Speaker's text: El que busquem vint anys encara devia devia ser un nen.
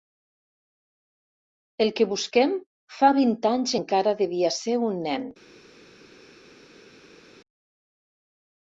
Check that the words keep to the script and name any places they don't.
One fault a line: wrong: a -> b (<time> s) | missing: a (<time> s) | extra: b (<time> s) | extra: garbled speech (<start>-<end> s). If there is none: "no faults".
extra: fa (3.0 s)
missing: devia (4.5 s)